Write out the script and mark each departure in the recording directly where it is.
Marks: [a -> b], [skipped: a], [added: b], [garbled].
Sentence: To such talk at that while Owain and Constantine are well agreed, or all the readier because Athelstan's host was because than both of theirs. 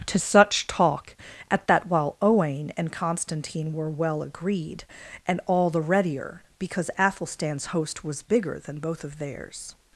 To such talk at that while Owain and Constantine [are -> were] well agreed, [or -> and] all the readier because Athelstan's host was [because -> bigger] than both of theirs.